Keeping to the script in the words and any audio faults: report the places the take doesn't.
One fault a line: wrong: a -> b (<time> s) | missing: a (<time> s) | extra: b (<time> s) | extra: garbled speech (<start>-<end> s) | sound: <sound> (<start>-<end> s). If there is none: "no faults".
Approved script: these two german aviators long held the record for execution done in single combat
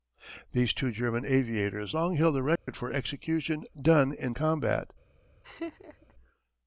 sound: dropout (2.6-2.7 s)
missing: single (4.3 s)
sound: laugh (5.4-6.1 s)